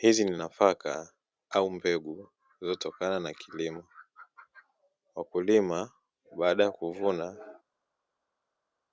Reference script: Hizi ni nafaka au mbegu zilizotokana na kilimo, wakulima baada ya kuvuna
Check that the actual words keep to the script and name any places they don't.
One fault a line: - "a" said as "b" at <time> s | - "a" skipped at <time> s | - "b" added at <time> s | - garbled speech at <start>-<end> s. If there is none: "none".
none